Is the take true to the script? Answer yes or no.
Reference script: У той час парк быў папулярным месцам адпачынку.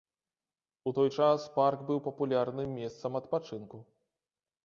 yes